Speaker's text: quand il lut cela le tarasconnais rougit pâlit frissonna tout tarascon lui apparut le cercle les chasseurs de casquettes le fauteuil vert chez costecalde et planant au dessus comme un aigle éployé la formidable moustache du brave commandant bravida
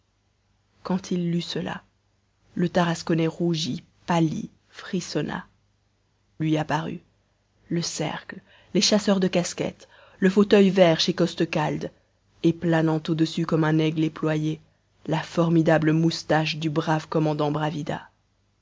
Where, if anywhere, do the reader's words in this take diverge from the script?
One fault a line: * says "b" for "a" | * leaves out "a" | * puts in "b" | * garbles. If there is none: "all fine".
* leaves out "tout tarascon"